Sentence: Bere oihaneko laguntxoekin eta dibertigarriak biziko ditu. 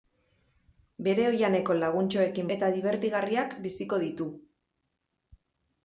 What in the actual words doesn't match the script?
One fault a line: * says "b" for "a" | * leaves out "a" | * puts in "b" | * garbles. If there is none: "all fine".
all fine